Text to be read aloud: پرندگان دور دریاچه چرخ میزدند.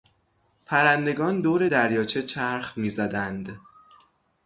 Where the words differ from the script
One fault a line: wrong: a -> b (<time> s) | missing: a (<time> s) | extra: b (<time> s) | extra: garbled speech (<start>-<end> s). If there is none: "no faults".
no faults